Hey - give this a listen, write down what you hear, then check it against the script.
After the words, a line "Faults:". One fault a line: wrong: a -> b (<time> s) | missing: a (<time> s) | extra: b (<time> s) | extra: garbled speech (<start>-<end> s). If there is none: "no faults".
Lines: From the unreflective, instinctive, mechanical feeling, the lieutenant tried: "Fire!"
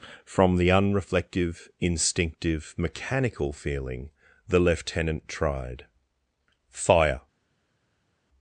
From the unreflective, instinctive, mechanical feeling, the lieutenant tried: "Fire!"
Faults:
no faults